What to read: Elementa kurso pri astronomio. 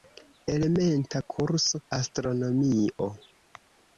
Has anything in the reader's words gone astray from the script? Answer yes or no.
yes